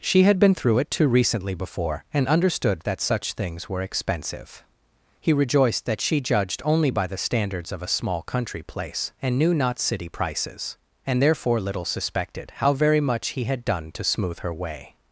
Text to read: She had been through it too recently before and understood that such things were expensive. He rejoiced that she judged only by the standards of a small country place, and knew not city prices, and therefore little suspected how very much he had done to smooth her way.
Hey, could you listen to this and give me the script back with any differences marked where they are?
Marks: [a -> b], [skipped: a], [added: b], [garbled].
She had been through it too recently before and understood that such things were expensive. He rejoiced that she judged only by the standards of a small country place, and knew not city prices, and therefore little suspected how very much he had done to smooth her way.